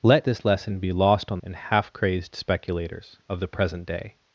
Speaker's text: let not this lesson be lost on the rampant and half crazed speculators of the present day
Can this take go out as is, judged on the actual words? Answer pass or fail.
fail